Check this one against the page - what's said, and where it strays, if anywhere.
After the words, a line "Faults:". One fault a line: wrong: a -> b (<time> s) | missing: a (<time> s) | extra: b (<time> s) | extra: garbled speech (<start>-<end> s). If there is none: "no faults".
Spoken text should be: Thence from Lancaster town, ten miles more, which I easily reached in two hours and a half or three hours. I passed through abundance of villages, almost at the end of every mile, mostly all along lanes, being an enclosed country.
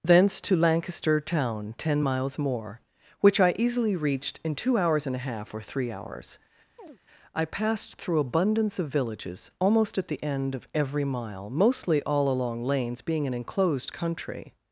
Thence to Lancaster town, ten miles more, which I easily reached in two hours and a half or three hours. I passed through abundance of villages, almost at the end of every mile, mostly all along lanes, being an enclosed country.
Faults:
wrong: from -> to (0.4 s)